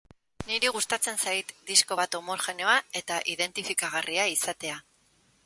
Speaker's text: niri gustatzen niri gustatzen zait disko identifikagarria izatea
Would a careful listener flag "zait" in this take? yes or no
yes